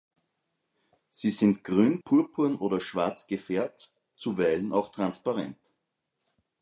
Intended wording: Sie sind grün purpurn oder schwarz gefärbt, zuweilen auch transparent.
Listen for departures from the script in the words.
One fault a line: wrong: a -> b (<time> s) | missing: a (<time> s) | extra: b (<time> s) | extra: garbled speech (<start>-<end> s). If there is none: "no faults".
no faults